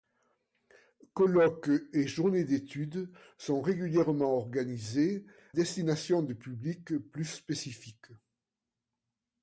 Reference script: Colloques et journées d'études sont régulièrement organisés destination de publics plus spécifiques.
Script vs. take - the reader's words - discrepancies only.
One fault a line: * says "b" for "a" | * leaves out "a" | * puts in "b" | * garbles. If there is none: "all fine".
all fine